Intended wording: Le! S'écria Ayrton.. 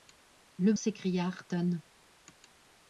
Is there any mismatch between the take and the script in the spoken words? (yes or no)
no